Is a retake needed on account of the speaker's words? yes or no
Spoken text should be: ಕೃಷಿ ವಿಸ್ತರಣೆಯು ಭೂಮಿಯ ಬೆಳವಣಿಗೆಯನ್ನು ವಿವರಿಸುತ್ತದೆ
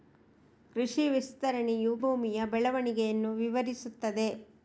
no